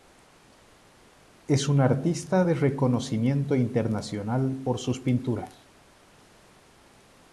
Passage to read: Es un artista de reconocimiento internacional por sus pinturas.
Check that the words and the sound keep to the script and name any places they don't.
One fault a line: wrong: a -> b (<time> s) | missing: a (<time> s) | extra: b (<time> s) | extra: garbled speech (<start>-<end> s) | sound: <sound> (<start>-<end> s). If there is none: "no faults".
no faults